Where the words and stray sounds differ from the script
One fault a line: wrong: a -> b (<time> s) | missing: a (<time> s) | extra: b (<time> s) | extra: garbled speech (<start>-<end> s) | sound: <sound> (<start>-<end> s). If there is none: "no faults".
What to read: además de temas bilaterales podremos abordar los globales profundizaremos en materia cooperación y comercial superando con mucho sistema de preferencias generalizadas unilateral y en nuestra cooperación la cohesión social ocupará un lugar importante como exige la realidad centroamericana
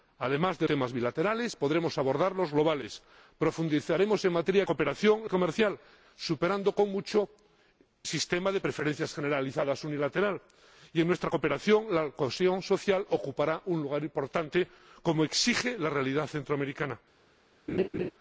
sound: laugh (17.7-18.1 s)